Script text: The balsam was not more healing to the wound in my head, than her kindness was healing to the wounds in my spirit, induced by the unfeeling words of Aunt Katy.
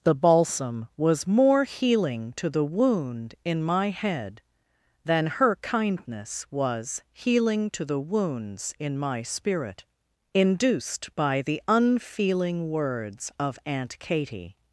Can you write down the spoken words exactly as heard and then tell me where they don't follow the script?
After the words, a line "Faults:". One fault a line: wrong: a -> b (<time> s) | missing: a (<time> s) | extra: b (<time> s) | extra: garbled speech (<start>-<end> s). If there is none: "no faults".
The balsam was more healing to the wound in my head, than her kindness was healing to the wounds in my spirit, induced by the unfeeling words of Aunt Katy.
Faults:
missing: not (1.3 s)